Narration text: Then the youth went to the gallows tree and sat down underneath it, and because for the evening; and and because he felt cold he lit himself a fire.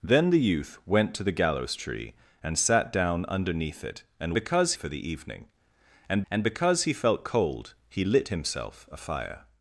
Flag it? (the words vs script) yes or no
no